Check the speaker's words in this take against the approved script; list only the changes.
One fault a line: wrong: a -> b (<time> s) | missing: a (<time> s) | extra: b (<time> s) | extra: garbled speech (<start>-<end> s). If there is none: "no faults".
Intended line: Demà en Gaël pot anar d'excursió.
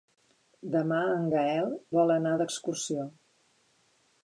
wrong: pot -> vol (2.0 s)